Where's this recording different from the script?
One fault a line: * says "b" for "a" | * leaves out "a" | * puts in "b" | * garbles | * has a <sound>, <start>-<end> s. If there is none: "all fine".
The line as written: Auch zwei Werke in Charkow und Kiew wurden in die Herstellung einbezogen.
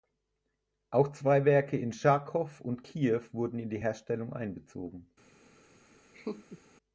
* has a laugh, 6.1-6.6 s